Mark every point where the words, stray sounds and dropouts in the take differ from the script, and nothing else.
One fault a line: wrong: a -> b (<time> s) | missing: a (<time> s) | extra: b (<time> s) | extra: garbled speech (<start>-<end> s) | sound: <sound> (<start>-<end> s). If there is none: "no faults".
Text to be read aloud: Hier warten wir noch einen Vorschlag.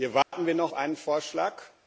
sound: dropout (0.2-0.3 s)